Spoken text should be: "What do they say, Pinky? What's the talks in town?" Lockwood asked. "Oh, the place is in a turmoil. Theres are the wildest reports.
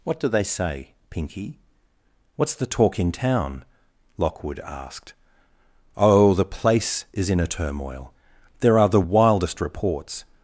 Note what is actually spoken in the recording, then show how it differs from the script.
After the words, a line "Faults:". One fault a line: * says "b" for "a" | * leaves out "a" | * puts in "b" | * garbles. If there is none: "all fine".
"What do they say, Pinky? What's the talk in town?" Lockwood asked. "Oh, the place is in a turmoil. There are the wildest reports.
Faults:
* says "talk" for "talks"
* says "There" for "Theres"